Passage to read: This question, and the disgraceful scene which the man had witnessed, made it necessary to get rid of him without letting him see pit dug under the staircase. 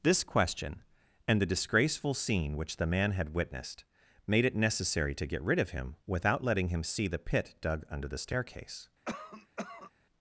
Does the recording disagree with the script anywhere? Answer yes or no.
yes